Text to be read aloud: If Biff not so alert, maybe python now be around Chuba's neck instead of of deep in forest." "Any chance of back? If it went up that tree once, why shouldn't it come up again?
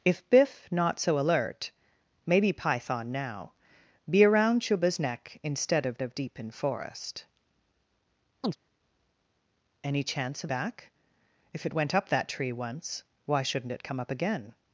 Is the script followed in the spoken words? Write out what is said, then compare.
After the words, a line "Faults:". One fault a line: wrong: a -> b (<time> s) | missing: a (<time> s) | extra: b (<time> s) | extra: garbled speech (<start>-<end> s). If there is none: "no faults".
If Biff not so alert, maybe python now be around Chuba's neck instead of of deep in forest." "Any chance of back? If it went up that tree once, why shouldn't it come up again?
Faults:
no faults